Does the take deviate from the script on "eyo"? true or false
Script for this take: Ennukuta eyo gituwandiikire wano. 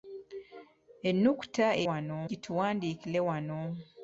true